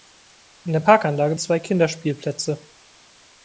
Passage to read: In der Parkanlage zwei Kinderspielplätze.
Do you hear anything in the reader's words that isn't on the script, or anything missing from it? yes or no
no